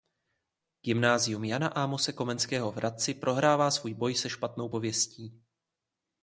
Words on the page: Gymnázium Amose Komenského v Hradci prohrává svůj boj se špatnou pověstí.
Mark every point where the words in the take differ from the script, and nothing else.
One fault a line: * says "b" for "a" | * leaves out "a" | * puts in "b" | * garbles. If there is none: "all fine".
* puts in "Jana"